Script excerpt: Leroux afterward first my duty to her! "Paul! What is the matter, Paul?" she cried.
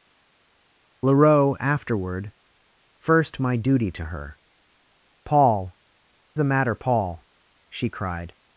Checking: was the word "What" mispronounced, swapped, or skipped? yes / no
yes